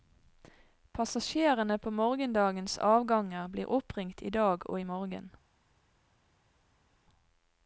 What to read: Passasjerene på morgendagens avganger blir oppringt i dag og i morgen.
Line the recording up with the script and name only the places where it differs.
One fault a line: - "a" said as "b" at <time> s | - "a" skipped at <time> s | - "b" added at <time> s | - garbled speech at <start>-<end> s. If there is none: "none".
none